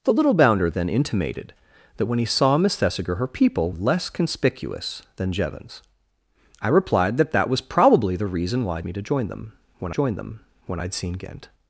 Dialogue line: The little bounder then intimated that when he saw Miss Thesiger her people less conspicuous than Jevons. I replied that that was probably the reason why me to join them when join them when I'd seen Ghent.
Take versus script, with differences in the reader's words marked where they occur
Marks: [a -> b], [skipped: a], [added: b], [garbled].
The little bounder then intimated that when he saw Miss Thesiger her people less conspicuous than Jevons. I replied that that was probably the reason why me to join them when join them when I'd seen Ghent.